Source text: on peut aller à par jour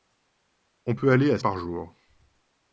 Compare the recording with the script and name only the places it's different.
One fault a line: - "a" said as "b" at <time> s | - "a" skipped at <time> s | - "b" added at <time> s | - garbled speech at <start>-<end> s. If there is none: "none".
none